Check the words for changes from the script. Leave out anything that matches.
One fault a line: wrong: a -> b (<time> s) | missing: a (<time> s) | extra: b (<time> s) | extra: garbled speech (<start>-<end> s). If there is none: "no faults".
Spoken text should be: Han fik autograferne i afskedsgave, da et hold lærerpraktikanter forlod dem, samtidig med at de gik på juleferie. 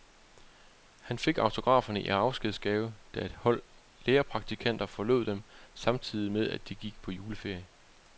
no faults